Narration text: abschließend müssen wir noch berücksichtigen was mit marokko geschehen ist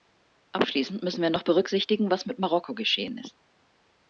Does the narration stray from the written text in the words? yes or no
no